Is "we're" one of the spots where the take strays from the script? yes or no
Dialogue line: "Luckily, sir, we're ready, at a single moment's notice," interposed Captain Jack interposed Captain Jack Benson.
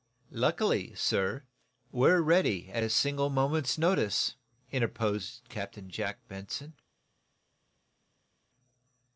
no